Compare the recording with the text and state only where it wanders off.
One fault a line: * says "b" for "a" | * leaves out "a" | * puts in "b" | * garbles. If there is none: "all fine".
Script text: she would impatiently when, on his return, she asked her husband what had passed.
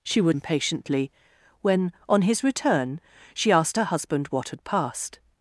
all fine